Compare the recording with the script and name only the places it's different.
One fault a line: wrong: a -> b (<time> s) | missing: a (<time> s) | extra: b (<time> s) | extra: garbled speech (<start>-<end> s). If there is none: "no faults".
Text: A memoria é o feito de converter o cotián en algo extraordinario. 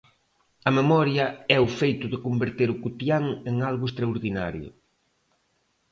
no faults